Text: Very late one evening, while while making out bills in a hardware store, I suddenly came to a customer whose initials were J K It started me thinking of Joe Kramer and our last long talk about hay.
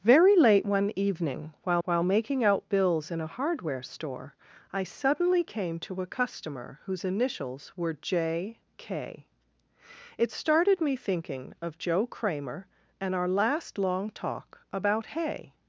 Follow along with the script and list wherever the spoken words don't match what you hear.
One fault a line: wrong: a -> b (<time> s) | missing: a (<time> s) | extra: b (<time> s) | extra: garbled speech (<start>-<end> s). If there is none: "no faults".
no faults